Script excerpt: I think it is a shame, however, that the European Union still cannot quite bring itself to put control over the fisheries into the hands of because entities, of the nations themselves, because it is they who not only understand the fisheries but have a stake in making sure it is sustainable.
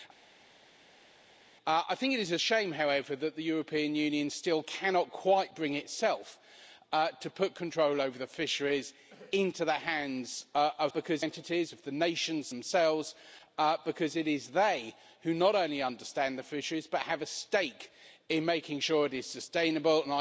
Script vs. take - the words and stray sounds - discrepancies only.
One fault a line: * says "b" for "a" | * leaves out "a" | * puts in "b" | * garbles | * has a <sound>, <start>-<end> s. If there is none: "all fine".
all fine